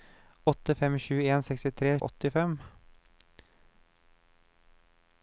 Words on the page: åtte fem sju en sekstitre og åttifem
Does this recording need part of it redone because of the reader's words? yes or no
no